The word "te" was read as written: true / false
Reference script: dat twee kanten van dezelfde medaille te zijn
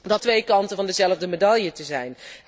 true